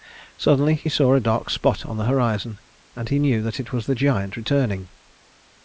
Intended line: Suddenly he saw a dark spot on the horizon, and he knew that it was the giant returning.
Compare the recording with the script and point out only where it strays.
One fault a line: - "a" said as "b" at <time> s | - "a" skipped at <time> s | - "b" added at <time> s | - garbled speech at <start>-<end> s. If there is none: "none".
none